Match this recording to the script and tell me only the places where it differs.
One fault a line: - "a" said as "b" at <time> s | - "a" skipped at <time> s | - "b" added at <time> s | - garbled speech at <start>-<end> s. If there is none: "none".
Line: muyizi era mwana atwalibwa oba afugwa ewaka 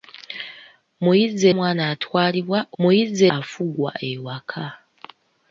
- "era" skipped at 1.4 s
- "oba" said as "muyizi" at 2.8 s